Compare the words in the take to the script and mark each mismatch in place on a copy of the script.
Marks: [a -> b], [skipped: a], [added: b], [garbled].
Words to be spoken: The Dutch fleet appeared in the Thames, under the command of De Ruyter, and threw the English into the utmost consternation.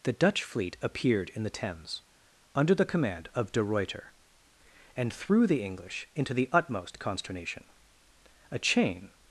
The Dutch fleet appeared in the Thames, under the command of De Ruyter, and threw the English into the utmost consternation. [added: A chain]